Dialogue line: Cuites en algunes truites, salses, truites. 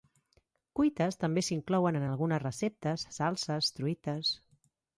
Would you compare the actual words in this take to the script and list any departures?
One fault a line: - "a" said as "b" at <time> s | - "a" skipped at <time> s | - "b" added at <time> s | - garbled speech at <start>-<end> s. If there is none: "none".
- "també s'inclouen" added at 1.2 s
- "truites" said as "receptes" at 2.5 s